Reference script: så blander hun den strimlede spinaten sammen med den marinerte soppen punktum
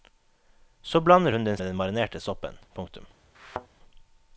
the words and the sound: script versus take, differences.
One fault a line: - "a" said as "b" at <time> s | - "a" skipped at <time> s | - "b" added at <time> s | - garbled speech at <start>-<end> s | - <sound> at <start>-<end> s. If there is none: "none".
- "strimlede spinaten sammen" skipped at 1.6 s
- thud at 3.3-3.7 s